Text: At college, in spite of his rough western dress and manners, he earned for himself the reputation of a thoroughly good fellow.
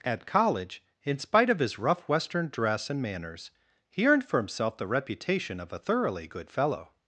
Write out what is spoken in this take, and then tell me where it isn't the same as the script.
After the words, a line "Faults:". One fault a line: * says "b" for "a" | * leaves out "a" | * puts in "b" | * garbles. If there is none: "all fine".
At college, in spite of his rough western dress and manners, he earned for himself the reputation of a thoroughly good fellow.
Faults:
all fine